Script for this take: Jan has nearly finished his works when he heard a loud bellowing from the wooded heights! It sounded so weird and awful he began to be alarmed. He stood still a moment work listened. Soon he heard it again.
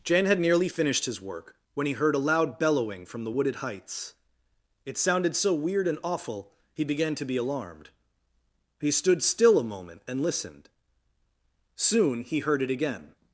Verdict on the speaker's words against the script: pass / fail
fail